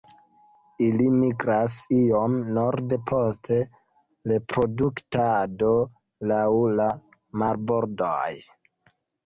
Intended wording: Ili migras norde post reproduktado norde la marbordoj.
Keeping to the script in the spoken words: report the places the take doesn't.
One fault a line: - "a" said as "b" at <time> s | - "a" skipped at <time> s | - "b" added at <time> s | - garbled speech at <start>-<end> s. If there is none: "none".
- "iom" added at 2.0 s
- "norde" said as "laŭ" at 6.3 s